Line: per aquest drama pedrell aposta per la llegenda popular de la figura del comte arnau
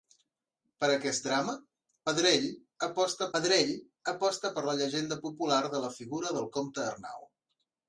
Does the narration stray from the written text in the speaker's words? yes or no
yes